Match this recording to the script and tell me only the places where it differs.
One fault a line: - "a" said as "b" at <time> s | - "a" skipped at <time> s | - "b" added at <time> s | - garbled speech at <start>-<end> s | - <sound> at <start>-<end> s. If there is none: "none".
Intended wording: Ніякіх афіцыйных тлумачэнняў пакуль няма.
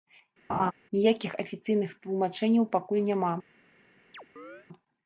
- laugh at 0.5-0.7 s
- chirp at 4.1-4.7 s